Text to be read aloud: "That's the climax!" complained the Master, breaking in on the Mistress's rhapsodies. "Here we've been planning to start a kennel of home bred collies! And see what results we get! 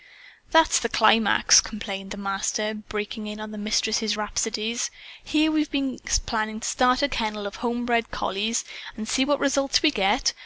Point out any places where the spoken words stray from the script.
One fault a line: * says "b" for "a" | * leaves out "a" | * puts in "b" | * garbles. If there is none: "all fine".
all fine